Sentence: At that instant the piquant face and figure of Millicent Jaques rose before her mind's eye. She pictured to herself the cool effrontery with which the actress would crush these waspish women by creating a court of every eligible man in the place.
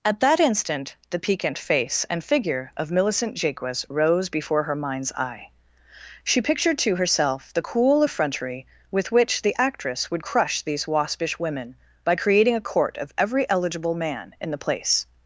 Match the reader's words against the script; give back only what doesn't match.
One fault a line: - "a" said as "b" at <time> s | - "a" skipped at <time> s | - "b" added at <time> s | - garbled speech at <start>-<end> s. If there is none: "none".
none